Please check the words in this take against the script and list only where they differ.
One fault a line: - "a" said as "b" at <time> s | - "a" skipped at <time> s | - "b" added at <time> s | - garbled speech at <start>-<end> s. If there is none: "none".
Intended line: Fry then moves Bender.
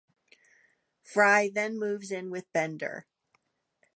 - "in with" added at 2.1 s